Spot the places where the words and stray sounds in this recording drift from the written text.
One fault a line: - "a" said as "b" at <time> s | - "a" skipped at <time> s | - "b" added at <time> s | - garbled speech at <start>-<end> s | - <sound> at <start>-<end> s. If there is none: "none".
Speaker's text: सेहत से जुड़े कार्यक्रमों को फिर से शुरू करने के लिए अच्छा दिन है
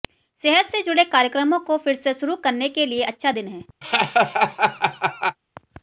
- laugh at 3.8-5.4 s